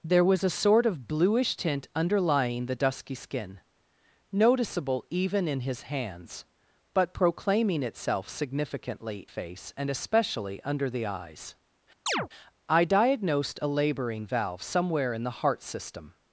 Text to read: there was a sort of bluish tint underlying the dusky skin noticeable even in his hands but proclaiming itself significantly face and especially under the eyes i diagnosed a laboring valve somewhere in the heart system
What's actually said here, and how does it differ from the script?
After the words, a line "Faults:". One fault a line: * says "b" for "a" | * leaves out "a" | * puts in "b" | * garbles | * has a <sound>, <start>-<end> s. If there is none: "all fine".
there was a sort of bluish tint underlying the dusky skin noticeable even in his hands but proclaiming itself significantly face and especially under the eyes i diagnosed a laboring valve somewhere in the heart system
Faults:
* has a chirp, 12.1-12.3 s